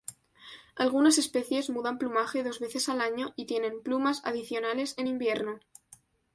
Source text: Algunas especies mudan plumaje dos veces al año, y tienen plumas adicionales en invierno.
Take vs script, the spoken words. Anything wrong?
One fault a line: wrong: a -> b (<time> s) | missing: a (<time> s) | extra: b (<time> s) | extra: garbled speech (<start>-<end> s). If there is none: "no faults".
no faults